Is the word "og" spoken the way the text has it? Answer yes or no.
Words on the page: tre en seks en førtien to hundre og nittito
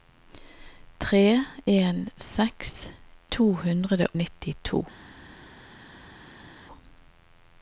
no